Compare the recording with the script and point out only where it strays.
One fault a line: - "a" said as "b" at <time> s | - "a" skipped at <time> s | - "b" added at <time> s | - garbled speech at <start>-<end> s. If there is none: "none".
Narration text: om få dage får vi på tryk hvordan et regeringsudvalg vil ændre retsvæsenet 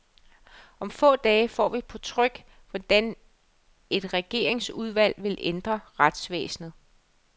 none